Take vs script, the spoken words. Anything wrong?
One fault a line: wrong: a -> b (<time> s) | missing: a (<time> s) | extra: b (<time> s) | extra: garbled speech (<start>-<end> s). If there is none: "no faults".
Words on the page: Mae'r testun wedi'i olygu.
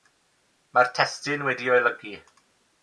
no faults